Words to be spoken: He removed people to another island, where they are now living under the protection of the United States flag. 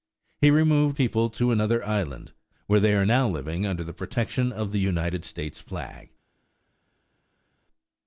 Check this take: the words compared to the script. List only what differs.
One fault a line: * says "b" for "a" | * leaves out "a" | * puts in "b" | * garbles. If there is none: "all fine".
all fine